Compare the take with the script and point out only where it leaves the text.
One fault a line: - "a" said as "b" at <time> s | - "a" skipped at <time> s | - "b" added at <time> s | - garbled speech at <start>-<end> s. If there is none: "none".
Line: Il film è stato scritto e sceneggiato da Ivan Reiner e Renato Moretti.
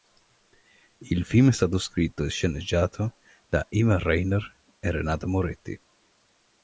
none